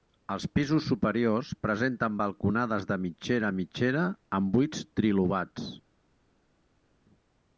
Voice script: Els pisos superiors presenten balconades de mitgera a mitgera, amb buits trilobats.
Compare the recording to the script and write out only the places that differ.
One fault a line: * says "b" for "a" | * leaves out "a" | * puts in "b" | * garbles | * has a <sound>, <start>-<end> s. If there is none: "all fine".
all fine